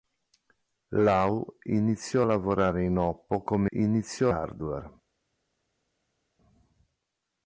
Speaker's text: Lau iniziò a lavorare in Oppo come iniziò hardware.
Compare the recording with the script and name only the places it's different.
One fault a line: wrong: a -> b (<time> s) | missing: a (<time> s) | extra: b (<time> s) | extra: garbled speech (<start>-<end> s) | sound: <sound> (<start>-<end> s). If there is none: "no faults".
no faults